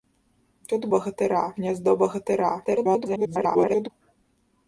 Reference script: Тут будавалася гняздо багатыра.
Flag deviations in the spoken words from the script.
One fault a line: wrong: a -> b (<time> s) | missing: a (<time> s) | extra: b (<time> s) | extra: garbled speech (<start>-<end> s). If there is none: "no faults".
wrong: будавалася -> багатыра (1.0 s)
extra: garbled speech (2.6-3.9 s)